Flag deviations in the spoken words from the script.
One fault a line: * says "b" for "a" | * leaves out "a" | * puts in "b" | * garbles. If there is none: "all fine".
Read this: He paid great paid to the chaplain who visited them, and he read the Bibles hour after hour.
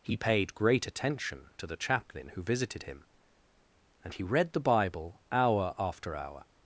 * says "attention" for "paid"
* says "him" for "them"
* says "Bible" for "Bibles"